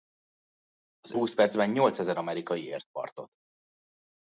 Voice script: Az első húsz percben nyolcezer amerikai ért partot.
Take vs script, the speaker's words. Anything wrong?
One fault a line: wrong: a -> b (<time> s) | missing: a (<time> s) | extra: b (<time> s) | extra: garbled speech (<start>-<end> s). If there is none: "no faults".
missing: első (1.1 s)